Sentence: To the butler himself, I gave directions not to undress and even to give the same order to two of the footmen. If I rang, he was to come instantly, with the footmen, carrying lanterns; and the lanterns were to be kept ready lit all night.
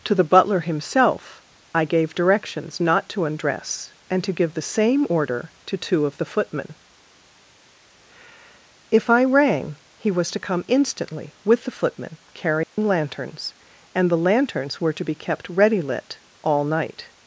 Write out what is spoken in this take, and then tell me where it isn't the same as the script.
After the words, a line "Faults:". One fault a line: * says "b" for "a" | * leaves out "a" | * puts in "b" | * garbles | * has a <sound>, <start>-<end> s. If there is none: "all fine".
To the butler himself, I gave directions not to undress and to give the same order to two of the footmen. If I rang, he was to come instantly, with the footmen, carrying lanterns; and the lanterns were to be kept ready lit all night.
Faults:
* leaves out "even"
* has a dropout, 12.6-12.8 s